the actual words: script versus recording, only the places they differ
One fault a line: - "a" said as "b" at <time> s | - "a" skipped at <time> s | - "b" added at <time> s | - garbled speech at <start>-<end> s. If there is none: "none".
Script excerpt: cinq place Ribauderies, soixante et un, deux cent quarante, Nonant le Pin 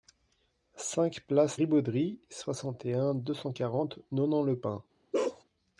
none